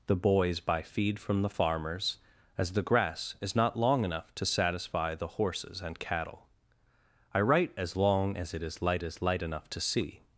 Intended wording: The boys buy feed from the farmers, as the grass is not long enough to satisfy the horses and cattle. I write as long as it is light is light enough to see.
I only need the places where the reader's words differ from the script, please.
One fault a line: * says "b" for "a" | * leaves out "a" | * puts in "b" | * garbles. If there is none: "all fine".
all fine